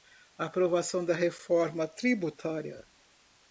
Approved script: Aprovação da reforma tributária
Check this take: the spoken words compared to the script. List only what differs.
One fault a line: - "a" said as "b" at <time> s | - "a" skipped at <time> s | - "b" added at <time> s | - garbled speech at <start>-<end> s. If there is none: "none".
none